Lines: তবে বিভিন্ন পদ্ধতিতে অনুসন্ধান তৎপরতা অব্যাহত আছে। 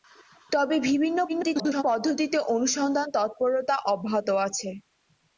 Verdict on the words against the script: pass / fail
fail